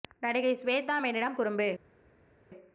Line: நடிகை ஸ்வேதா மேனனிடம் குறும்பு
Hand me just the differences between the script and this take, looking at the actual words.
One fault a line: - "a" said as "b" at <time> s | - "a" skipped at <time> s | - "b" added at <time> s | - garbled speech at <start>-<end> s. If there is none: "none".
none